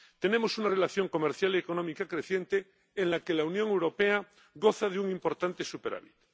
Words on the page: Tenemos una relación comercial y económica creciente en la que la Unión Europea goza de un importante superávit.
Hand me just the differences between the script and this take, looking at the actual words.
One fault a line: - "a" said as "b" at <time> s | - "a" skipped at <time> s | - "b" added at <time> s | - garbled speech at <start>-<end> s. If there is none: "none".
none